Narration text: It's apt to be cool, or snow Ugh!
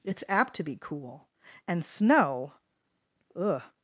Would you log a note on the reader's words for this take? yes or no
yes